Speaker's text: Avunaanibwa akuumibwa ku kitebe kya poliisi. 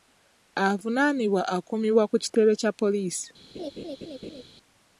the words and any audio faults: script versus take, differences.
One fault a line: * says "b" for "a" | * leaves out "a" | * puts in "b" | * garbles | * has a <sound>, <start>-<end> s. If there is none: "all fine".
* has a laugh, 3.5-4.4 s